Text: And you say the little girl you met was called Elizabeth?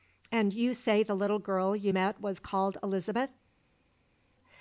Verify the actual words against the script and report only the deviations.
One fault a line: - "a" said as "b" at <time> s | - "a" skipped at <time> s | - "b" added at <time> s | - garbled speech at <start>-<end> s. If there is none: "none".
none